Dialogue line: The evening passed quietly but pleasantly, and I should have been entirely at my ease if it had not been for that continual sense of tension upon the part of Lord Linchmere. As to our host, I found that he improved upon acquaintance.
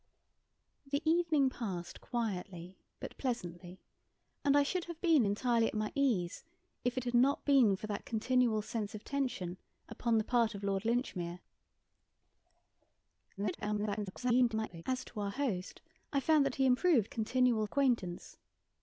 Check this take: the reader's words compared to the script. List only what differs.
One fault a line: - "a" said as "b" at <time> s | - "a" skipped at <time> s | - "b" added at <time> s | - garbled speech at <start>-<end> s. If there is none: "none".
- garbled speech at 13.4-14.8 s
- "upon" said as "continual" at 17.1 s